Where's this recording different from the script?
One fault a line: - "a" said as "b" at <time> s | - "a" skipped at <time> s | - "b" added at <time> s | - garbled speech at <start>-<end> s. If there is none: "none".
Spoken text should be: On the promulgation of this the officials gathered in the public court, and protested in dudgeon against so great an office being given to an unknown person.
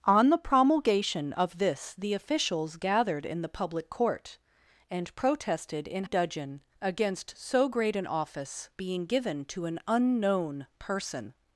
none